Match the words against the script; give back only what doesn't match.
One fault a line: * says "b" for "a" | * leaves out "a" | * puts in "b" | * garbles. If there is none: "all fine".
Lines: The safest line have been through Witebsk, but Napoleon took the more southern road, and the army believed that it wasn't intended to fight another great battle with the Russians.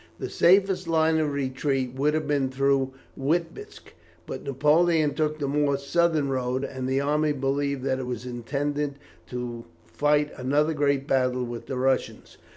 * puts in "of retreat would"
* says "was" for "wasn't"